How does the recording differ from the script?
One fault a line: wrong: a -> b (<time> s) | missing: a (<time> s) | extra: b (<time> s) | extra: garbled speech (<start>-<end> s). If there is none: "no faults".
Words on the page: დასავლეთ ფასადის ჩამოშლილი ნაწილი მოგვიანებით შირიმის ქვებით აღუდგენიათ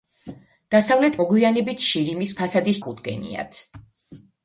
missing: ფასადის ჩამოშლილი ნაწილი (1.2 s)
wrong: ქვებით -> ფასადის (2.4 s)